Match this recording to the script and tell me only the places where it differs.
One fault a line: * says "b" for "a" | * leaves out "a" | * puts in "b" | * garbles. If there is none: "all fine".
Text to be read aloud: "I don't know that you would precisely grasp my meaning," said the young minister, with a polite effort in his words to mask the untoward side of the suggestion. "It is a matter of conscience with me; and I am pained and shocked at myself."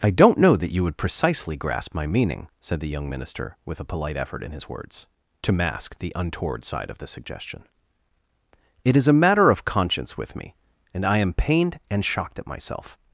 all fine